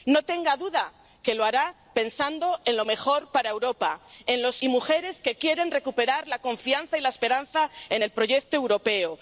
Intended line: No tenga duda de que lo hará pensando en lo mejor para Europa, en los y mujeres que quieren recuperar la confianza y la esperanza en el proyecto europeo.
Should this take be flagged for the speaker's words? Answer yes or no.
no